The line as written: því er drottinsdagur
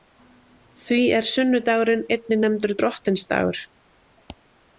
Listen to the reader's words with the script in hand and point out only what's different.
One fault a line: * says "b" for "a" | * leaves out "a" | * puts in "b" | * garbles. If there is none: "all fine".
* puts in "sunnudagurinn einnig nefndur"